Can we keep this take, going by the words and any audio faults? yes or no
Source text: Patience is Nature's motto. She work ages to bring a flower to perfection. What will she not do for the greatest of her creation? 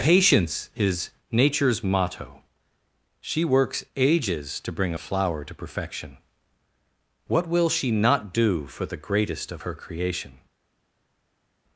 no